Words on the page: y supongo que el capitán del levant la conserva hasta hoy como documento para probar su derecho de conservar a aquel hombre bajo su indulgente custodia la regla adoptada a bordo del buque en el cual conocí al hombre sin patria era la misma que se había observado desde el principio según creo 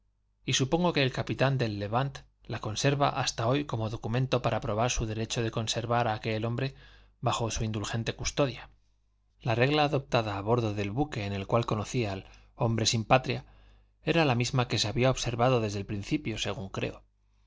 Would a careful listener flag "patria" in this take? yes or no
no